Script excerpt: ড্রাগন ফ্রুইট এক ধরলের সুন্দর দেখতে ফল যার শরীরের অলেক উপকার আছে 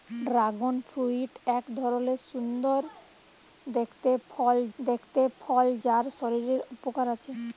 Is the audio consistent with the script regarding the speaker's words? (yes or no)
no